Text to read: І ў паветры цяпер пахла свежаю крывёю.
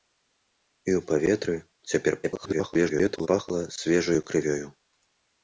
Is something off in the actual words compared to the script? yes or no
yes